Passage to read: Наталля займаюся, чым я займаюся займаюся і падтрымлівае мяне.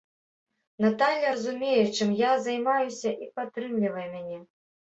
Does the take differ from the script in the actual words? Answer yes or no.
yes